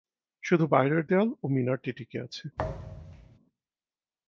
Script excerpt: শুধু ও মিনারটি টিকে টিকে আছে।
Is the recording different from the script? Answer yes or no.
yes